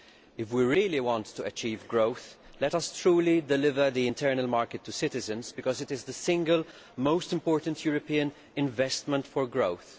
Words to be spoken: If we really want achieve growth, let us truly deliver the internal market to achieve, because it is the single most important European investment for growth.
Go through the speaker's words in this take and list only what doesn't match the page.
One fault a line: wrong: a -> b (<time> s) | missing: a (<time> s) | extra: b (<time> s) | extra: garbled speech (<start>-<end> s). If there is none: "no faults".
extra: to (1.3 s)
wrong: achieve -> citizens (4.9 s)